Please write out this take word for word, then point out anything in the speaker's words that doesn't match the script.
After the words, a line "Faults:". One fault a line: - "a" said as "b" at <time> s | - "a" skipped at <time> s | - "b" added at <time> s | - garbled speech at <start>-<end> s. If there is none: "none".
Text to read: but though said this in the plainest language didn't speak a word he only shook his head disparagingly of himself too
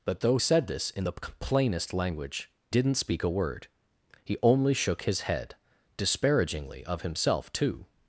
but though said this in the plainest language didn't speak a word he only shook his head disparagingly of himself too
Faults:
none